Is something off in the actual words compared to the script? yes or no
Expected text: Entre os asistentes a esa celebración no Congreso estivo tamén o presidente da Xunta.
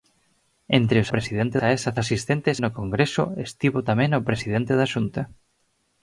yes